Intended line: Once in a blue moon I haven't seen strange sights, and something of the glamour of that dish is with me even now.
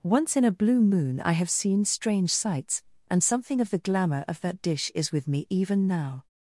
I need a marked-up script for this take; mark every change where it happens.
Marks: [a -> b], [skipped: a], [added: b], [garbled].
Once in a blue moon I [haven't -> have] seen strange sights, and something of the glamour of that dish is with me even now.